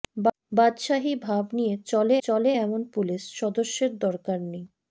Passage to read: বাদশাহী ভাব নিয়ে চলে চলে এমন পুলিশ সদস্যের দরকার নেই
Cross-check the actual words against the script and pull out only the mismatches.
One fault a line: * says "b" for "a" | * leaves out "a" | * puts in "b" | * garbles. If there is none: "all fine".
all fine